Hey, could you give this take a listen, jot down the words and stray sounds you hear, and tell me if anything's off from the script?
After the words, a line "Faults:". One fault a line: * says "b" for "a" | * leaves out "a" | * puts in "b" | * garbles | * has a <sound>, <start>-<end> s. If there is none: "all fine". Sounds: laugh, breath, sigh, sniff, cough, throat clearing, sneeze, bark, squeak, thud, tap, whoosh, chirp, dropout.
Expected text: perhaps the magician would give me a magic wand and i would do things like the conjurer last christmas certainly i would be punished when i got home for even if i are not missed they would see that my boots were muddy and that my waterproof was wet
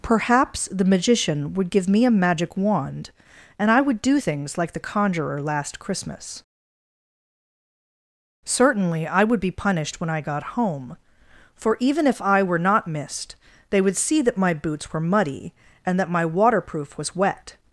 perhaps the magician would give me a magic wand and i would do things like the conjurer last christmas certainly i would be punished when i got home for even if i were not missed they would see that my boots were muddy and that my waterproof was wet
Faults:
* says "were" for "are"